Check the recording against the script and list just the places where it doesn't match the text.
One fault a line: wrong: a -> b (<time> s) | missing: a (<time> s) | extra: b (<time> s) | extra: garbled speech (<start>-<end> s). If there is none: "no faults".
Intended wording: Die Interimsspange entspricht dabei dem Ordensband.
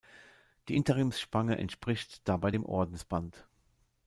no faults